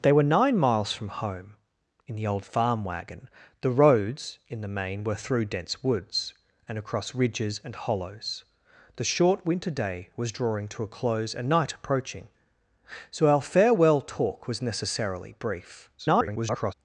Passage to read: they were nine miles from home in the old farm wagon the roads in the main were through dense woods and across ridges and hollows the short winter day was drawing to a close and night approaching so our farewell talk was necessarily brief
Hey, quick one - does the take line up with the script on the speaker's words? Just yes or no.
no